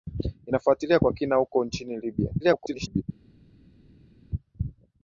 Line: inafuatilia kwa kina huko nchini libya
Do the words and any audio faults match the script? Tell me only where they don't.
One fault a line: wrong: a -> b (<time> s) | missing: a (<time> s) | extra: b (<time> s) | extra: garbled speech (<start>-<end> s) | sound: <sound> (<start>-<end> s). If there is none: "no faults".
extra: garbled speech (2.4-3.0 s)